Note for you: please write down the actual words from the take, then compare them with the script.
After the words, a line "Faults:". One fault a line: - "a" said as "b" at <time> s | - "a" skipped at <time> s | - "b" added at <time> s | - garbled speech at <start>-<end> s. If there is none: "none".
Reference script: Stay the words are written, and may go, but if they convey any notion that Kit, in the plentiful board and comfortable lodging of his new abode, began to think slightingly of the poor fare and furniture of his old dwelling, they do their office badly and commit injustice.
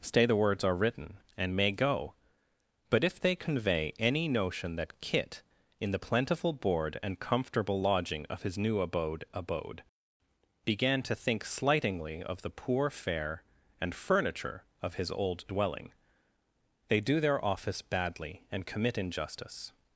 Stay the words are written, and may go, but if they convey any notion that Kit, in the plentiful board and comfortable lodging of his new abode abode, began to think slightingly of the poor fare and furniture of his old dwelling, they do their office badly and commit injustice.
Faults:
- "abode" added at 9.3 s